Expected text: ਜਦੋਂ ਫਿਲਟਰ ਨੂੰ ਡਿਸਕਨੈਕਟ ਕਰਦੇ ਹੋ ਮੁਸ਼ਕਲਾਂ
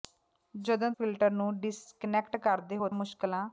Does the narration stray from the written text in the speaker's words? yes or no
no